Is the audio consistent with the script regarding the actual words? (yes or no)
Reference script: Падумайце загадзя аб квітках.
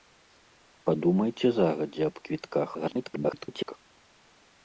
no